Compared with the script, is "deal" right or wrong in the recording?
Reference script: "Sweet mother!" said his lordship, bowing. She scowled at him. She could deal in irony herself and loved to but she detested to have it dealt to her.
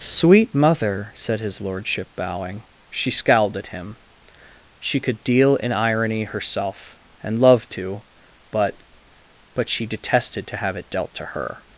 right